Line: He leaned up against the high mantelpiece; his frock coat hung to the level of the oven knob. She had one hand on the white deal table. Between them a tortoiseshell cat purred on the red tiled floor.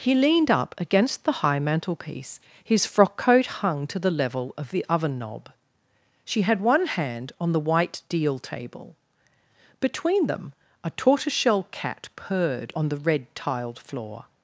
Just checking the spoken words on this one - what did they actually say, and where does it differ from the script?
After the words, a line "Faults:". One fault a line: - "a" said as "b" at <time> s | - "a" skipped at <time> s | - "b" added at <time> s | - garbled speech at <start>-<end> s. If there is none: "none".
He leaned up against the high mantelpiece; his frock coat hung to the level of the oven knob. She had one hand on the white deal table. Between them a tortoiseshell cat purred on the red tiled floor.
Faults:
none